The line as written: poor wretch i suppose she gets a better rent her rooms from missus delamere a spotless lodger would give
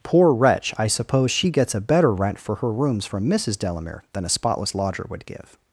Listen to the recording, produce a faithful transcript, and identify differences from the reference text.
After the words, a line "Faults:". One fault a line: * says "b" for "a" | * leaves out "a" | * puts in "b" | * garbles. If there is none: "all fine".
poor wretch i suppose she gets a better rent for her rooms from missus delamere than a spotless lodger would give
Faults:
* puts in "for"
* puts in "than"